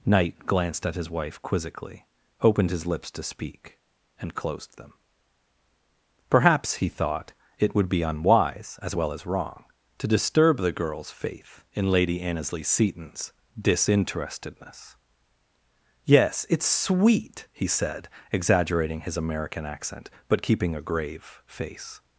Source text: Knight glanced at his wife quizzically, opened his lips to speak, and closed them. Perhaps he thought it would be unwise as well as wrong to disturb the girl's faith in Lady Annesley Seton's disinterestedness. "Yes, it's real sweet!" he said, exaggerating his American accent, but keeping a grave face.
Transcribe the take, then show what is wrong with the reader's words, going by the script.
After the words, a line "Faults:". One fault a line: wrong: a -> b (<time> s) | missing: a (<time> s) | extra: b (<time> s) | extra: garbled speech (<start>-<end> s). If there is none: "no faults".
Knight glanced at his wife quizzically, opened his lips to speak, and closed them. Perhaps he thought it would be unwise as well as wrong to disturb the girl's faith in Lady Annesley Seton's disinterestedness. "Yes, it's sweet!" he said, exaggerating his American accent, but keeping a grave face.
Faults:
missing: real (16.7 s)